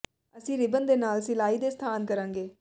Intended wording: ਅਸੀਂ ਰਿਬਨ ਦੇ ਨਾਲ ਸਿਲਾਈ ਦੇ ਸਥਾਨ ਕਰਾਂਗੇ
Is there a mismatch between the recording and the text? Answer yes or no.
no